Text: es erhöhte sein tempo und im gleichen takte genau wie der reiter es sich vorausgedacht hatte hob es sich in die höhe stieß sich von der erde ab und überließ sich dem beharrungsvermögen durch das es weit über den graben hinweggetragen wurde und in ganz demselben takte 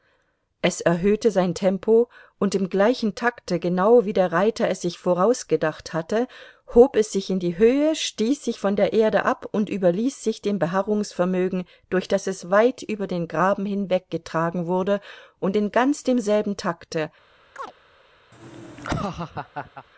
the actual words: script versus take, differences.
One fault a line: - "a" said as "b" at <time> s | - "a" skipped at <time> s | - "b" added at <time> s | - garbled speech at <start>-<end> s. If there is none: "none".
none